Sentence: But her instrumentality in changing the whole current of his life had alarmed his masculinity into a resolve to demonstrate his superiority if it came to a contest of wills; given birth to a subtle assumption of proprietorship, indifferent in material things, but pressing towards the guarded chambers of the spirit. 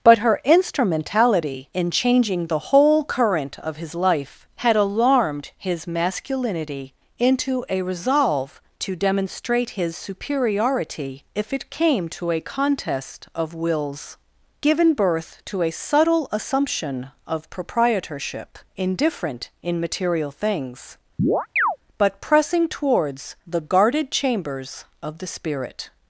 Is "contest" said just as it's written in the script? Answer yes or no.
yes